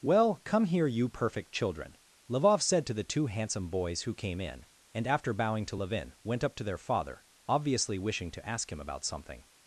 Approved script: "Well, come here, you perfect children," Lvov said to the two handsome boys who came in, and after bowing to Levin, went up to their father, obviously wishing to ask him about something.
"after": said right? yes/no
yes